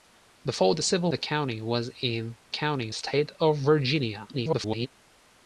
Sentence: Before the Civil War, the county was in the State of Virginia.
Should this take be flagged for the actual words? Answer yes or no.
yes